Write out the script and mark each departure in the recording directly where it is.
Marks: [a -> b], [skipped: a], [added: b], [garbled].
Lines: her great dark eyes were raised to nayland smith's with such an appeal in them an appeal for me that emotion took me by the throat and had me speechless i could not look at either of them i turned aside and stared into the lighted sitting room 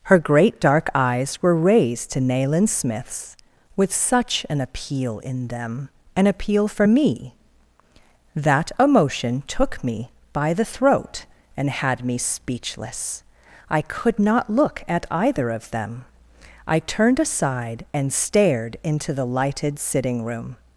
her great dark eyes were raised to nayland smith's with such an appeal in them an appeal for me that emotion took me by the throat and had me speechless i could not look at either of them i turned aside and stared into the lighted sitting room